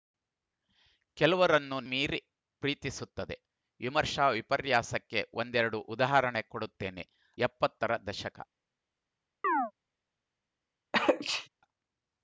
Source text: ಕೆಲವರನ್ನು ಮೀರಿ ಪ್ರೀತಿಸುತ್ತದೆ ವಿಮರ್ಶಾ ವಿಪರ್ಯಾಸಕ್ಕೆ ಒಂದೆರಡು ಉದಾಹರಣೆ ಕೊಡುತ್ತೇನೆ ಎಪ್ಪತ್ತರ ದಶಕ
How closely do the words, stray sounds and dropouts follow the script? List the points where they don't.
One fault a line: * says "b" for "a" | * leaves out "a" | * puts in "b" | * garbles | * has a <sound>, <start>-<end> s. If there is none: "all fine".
* has a chirp, 9.4-9.7 s
* has a sneeze, 10.9-11.5 s